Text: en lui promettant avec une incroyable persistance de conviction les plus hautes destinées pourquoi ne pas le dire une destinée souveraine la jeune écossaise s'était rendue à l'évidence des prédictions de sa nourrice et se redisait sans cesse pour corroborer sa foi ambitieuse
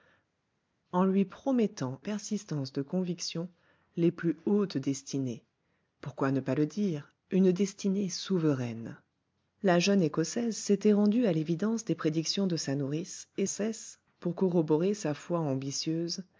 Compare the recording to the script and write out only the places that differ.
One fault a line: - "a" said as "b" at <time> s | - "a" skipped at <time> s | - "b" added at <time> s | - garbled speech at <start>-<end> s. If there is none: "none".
- "avec une incroyable" skipped at 2.0 s
- "se redisait sans" skipped at 13.5 s